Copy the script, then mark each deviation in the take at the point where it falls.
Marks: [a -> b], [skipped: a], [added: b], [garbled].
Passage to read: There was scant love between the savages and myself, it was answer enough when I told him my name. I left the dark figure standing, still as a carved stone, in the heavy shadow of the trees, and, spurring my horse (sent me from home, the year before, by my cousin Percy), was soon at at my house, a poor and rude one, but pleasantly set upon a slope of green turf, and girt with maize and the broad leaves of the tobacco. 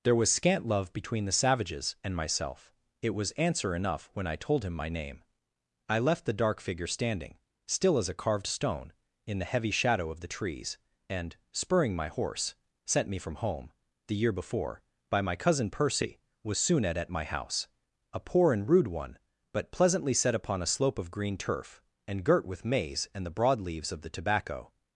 There was scant love between the savages and myself, it was answer enough when I told him my name. I left the dark figure standing, still as a carved stone, in the heavy shadow of the trees, and, spurring my horse (sent me from home, the year before, by my cousin Percy), was soon at at my house, a poor and rude one, but pleasantly set upon a slope of green turf, and girt with maize and the broad leaves of the tobacco.